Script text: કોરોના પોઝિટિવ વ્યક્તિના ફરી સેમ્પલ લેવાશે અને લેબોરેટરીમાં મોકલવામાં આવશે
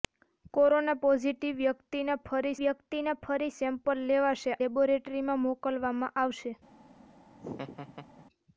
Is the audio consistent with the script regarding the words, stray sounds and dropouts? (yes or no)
no